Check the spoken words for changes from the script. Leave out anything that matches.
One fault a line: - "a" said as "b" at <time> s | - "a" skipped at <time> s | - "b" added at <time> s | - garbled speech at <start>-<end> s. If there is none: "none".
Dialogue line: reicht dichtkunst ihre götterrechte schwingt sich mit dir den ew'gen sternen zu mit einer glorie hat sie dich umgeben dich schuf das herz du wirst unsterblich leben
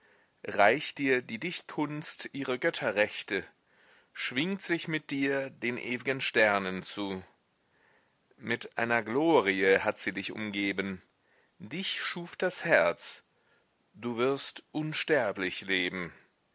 - "dir die" added at 1.0 s